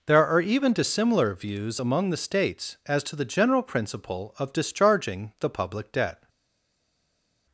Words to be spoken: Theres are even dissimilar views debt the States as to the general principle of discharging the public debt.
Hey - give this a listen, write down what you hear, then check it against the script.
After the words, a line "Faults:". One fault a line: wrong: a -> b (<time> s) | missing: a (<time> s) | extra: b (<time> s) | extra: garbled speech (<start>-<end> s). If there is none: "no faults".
There are even dissimilar views among the States as to the general principle of discharging the public debt.
Faults:
wrong: Theres -> There (0.1 s)
wrong: debt -> among (1.8 s)